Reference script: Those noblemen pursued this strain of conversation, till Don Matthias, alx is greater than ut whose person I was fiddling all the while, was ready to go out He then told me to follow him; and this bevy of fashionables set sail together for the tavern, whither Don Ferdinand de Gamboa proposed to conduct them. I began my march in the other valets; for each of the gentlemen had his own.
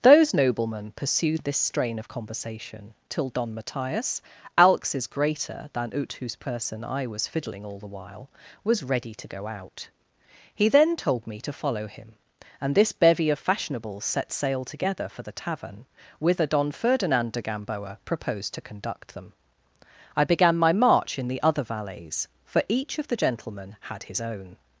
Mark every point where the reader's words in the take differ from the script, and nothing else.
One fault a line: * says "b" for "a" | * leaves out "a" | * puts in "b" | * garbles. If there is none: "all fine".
all fine